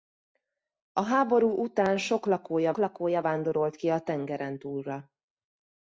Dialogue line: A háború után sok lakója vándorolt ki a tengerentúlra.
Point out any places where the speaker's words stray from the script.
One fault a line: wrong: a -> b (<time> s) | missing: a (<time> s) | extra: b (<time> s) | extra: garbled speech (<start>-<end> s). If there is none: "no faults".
extra: lakója (2.8 s)